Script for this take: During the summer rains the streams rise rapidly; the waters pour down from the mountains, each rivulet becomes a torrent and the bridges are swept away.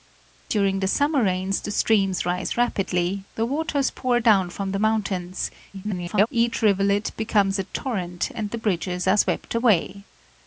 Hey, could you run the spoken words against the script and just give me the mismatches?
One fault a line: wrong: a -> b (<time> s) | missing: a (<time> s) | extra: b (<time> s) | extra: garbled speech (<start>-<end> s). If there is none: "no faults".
extra: garbled speech (5.7-6.3 s)